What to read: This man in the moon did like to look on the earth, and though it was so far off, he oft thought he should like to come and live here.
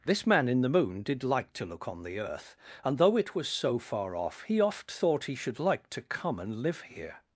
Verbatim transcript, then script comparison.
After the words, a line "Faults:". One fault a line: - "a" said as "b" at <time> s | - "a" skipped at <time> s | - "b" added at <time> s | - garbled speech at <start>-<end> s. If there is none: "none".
This man in the moon did like to look on the earth, and though it was so far off, he oft thought he should like to come and live here.
Faults:
none